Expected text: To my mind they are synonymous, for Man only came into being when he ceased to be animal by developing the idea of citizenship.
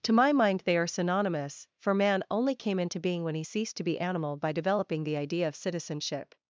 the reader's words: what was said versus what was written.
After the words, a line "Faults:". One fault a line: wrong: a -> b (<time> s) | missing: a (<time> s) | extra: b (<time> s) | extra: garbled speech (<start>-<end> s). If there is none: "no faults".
To my mind they are synonymous, for Man only came into being when he ceased to be animal by developing the idea of citizenship.
Faults:
no faults